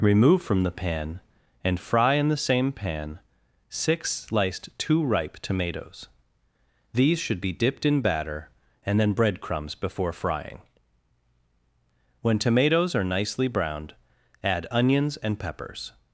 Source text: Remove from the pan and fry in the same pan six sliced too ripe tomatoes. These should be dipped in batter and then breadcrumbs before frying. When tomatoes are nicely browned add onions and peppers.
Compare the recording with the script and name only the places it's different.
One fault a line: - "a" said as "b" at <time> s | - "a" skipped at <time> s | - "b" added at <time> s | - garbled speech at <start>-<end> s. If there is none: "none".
none